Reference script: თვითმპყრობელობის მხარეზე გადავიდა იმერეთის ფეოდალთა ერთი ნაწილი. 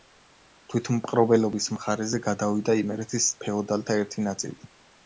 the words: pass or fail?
pass